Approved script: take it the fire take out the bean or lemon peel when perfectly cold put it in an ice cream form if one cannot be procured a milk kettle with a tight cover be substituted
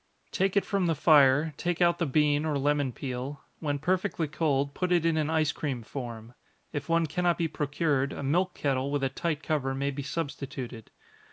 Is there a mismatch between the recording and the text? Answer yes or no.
yes